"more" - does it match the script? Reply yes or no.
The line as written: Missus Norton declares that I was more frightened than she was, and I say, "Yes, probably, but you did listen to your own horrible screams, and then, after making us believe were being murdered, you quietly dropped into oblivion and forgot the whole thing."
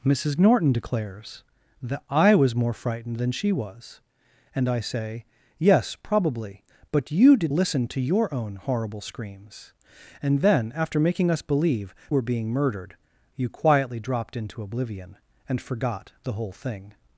yes